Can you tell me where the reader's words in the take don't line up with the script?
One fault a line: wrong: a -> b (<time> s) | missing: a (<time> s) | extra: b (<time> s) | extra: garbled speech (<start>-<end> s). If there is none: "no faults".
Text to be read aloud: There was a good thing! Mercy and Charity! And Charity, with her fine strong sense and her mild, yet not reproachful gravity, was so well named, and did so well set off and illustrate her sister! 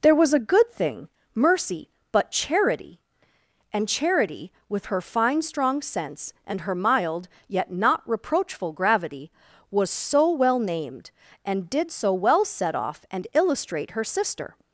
wrong: and -> but (2.1 s)